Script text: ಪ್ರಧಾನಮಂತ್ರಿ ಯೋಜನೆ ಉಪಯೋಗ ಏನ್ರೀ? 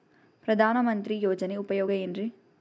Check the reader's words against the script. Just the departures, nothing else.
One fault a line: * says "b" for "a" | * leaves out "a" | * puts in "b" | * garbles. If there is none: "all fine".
all fine